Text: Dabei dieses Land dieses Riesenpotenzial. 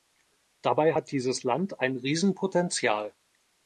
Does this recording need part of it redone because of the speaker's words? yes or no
yes